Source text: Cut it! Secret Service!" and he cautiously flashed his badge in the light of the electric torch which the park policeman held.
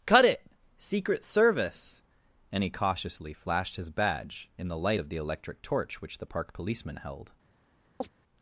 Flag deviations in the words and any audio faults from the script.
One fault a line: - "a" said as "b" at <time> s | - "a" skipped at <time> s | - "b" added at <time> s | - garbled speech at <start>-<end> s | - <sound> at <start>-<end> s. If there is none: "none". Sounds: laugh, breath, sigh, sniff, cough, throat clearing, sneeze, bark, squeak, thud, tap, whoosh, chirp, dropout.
- chirp at 8.0-8.1 s